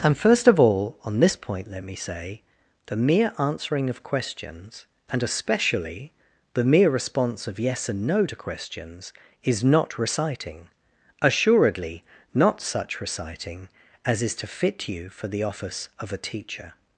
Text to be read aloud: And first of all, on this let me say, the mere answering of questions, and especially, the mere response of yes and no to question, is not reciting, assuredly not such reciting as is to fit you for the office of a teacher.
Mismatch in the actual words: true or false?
true